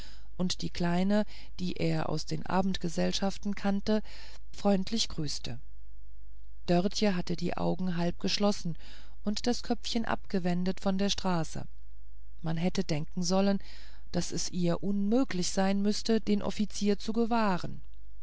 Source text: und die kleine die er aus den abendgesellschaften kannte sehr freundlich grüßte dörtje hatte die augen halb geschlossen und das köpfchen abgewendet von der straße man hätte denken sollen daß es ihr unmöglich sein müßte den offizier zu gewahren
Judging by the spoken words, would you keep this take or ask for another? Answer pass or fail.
fail